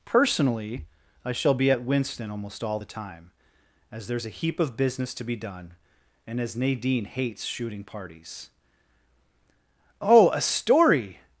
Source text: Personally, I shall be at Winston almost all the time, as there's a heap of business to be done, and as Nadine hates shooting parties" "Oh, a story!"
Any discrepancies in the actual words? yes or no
no